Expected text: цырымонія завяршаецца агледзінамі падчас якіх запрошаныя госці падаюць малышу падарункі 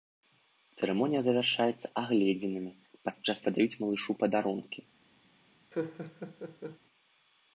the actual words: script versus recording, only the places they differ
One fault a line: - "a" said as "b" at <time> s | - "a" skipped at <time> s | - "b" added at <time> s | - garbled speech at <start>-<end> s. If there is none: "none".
- "якіх запрошаныя госці" skipped at 3.4 s